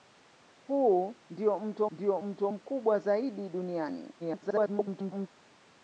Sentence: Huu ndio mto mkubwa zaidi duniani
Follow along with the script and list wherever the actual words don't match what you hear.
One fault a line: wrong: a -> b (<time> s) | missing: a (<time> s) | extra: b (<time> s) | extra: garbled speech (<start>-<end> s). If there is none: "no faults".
extra: ndio mto (1.9 s)
extra: garbled speech (4.2-5.3 s)